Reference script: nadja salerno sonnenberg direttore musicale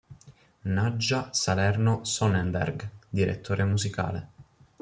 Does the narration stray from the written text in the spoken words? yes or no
no